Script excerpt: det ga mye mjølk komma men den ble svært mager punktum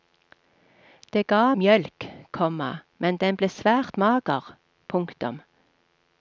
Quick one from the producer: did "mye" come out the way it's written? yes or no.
no